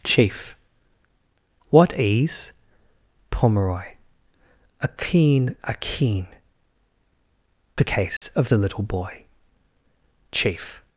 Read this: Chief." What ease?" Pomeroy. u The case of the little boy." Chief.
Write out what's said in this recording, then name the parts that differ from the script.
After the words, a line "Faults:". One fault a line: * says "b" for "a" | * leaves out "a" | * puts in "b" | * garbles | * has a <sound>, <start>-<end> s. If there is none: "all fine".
Chief." What ease?" Pomeroy. a keen a keen The case of the little boy." Chief.
Faults:
* says "a keen a keen" for "u"
* has a dropout, 8.2-8.2 s